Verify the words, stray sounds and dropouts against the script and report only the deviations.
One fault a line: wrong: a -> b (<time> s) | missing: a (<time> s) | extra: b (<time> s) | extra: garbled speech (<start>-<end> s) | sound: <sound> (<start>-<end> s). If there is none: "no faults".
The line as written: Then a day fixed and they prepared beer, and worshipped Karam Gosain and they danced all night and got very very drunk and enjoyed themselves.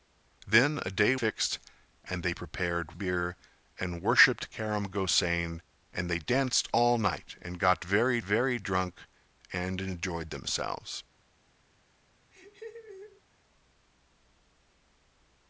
sound: laugh (12.3-13.2 s)